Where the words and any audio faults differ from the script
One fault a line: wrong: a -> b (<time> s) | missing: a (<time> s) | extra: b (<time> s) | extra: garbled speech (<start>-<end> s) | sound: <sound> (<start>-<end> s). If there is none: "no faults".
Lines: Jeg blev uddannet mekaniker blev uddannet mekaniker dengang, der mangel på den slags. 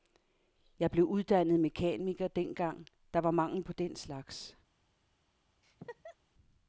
missing: blev uddannet mekaniker (2.3 s)
extra: var (3.2 s)
sound: laugh (5.6-6.2 s)